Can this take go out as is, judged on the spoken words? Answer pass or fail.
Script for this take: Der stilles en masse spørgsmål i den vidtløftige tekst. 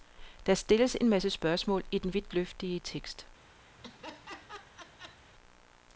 pass